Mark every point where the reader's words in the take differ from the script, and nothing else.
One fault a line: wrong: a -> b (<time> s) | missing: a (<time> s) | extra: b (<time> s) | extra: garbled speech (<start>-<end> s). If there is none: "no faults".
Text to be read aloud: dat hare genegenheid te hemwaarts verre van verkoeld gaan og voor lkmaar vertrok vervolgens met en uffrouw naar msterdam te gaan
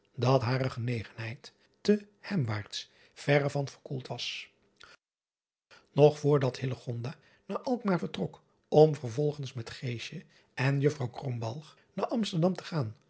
wrong: gaan -> was (4.0 s)
extra: dat naar (6.4 s)
extra: om (8.7 s)